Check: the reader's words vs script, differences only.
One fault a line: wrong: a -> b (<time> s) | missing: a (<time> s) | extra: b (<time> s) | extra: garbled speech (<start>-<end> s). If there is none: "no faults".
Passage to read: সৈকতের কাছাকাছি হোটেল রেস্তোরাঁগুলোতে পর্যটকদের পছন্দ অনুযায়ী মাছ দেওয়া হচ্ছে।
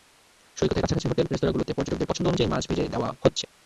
extra: ভেজে (2.7 s)